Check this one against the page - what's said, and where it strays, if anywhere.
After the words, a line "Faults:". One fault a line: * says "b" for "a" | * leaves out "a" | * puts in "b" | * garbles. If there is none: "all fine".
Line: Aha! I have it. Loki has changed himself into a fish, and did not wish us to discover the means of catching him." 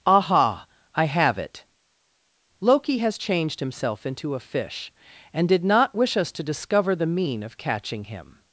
Aha! I have it. Loki has changed himself into a fish, and did not wish us to discover the mean of catching him."
Faults:
* says "mean" for "means"